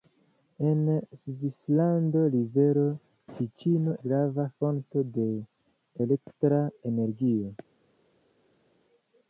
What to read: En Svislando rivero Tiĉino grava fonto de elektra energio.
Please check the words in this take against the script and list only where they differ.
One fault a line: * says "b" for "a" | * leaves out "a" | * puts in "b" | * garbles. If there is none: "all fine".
all fine